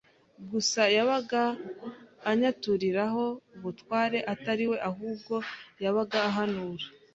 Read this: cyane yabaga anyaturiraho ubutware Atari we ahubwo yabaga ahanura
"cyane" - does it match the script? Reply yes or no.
no